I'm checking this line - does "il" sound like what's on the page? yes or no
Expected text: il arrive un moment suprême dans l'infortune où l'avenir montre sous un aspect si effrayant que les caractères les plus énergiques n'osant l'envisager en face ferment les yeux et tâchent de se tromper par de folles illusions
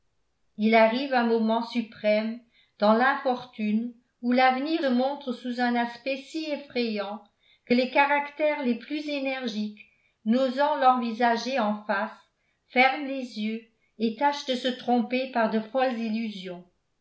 yes